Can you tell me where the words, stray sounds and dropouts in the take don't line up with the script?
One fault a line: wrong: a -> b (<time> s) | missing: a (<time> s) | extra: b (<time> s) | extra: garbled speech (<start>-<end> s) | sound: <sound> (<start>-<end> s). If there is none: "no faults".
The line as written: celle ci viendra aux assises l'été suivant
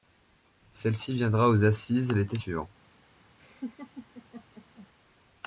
sound: laugh (3.4-4.9 s)